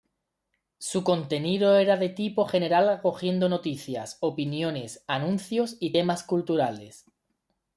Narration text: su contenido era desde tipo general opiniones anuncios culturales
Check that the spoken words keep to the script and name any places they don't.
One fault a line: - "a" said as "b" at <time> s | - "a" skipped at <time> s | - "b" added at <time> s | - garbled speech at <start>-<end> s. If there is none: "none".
- "desde" said as "de" at 1.9 s
- "acogiendo noticias" added at 2.9 s
- "y temas" added at 5.8 s